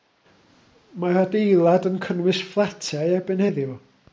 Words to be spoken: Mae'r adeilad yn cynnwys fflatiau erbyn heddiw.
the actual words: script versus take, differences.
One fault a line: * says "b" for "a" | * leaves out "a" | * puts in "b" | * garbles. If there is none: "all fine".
all fine